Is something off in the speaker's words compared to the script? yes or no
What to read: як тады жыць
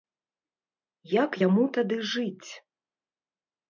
yes